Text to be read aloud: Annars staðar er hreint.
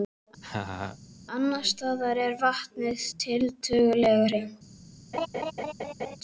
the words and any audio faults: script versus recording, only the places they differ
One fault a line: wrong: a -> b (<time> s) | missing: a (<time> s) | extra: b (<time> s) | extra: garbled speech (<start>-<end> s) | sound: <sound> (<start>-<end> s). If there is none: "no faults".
sound: laugh (0.4-1.0 s)
extra: vatnið tiltölulega (2.4 s)
sound: laugh (5.1-6.2 s)